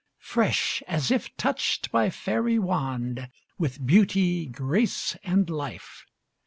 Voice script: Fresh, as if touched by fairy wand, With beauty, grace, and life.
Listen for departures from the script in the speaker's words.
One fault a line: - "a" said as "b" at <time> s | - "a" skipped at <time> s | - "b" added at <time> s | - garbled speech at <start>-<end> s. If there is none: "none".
none